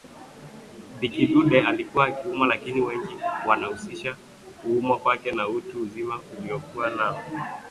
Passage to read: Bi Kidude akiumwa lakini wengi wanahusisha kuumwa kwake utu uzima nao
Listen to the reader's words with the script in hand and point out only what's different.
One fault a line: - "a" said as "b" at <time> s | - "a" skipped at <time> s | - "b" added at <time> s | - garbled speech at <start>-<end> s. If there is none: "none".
- "alikuwa" added at 1.6 s
- "na" added at 5.3 s
- "aliokuwa" added at 6.4 s